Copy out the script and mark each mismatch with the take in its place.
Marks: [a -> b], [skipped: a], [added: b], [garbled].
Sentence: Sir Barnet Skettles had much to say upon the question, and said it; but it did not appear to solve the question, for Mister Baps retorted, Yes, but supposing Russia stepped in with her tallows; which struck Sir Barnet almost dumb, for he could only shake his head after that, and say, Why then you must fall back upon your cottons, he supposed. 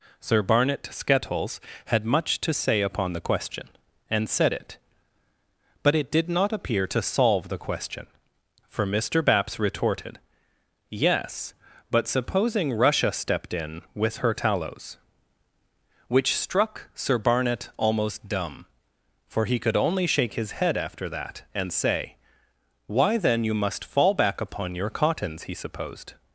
Sir Barnet Skettles had much to say upon the question, and said it; but it did not appear to solve the question, for Mister Baps retorted, Yes, but supposing Russia stepped in with her tallows; which struck Sir Barnet almost dumb, for he could only shake his head after that, and say, Why then you must fall back upon your cottons, he supposed.